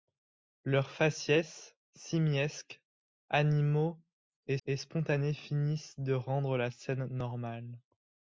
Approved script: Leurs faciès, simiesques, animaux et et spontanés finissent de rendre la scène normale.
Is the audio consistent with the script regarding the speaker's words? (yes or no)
yes